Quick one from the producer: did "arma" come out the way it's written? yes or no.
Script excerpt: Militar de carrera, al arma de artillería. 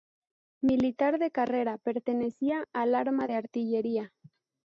yes